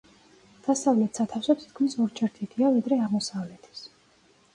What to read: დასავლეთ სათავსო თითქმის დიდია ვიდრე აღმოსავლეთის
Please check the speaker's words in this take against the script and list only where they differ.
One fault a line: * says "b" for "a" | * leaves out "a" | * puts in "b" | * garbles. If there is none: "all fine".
* puts in "ორჯერ"